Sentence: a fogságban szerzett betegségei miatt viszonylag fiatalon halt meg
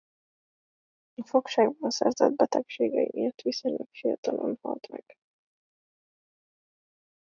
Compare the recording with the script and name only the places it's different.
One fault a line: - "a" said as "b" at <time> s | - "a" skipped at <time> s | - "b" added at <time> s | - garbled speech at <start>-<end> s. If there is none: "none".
none